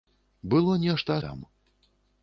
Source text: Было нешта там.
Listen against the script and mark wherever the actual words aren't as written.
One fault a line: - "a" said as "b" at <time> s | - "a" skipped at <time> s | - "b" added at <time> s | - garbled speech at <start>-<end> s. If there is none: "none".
none